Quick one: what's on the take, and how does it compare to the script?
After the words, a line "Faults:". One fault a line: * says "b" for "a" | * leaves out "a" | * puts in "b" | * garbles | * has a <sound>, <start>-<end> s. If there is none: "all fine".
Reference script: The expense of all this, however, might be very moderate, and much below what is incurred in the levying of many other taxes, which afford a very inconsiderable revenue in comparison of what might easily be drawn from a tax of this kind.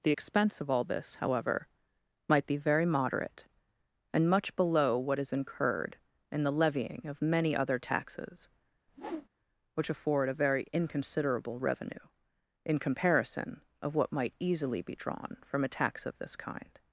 The expense of all this, however, might be very moderate, and much below what is incurred in the levying of many other taxes, which afford a very inconsiderable revenue in comparison of what might easily be drawn from a tax of this kind.
Faults:
* has a whoosh, 8.9-9.3 s